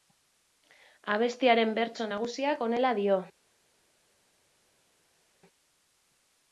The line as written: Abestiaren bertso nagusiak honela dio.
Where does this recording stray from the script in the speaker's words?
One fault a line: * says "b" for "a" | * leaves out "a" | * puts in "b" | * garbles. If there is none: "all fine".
all fine